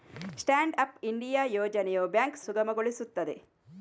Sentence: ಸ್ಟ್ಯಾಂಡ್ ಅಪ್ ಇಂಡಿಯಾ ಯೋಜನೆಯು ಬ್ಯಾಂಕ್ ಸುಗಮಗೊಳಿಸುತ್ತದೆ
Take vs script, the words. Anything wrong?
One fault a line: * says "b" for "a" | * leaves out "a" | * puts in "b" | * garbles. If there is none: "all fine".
all fine